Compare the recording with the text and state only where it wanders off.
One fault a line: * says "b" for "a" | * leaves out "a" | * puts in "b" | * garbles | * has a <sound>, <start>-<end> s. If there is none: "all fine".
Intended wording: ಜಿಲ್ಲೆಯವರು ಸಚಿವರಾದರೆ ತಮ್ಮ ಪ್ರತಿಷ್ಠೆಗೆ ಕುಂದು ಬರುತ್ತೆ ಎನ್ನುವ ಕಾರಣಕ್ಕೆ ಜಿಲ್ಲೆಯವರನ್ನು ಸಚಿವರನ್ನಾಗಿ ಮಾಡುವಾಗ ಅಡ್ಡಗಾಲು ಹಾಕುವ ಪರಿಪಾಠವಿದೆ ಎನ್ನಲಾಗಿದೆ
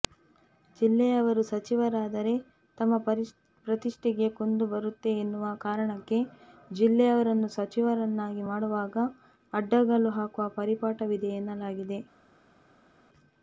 all fine